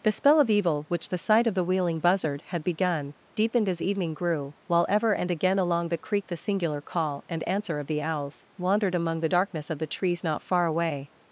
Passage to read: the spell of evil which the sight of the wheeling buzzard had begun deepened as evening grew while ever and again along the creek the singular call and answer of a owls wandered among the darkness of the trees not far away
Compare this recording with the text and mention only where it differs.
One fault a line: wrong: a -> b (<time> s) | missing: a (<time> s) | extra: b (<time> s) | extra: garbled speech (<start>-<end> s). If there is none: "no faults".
wrong: a -> the (7.8 s)